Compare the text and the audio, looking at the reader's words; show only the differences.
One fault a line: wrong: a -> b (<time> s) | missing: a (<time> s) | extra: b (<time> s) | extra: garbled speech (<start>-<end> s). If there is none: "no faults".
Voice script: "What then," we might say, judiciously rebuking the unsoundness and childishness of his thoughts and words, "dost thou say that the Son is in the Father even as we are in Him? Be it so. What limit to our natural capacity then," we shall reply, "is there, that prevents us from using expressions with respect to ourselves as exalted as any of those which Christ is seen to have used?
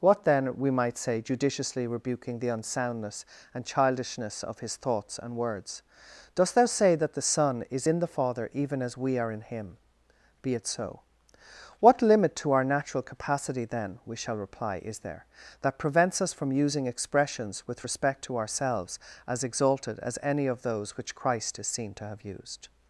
no faults